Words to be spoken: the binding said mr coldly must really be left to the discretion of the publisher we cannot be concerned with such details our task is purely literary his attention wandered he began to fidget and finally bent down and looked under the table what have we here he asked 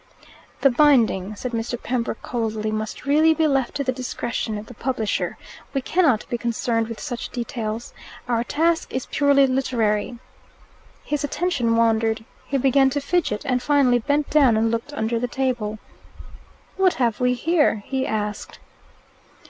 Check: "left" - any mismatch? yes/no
no